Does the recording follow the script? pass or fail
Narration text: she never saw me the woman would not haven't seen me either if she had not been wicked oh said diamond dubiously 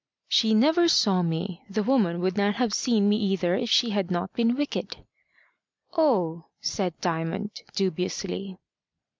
fail